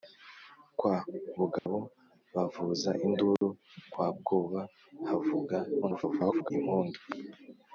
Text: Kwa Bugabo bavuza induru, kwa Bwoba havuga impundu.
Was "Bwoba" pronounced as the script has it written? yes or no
yes